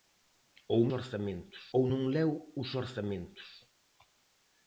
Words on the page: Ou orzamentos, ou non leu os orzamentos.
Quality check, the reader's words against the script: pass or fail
pass